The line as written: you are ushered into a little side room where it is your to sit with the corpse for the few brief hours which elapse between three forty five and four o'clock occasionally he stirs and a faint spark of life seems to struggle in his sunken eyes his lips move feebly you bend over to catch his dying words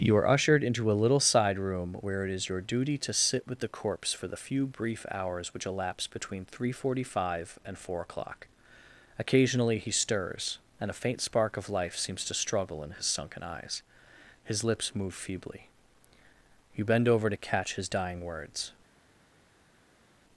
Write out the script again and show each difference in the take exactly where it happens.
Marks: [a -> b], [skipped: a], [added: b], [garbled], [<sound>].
you are ushered into a little side room where it is your [added: duty] to sit with the corpse for the few brief hours which elapse between three forty five and four o'clock occasionally he stirs and a faint spark of life seems to struggle in his sunken eyes his lips move feebly you bend over to catch his dying words